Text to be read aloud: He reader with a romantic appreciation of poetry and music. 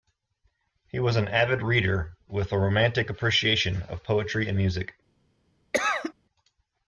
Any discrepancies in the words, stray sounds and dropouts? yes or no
yes